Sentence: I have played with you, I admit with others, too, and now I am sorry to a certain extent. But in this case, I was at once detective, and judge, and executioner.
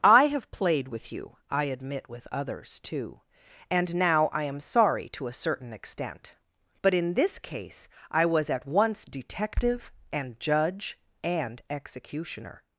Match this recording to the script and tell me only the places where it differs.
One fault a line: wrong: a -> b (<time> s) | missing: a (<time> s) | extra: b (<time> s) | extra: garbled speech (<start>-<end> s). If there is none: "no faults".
no faults